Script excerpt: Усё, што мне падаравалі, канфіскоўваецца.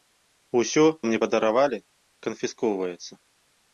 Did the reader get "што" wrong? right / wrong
wrong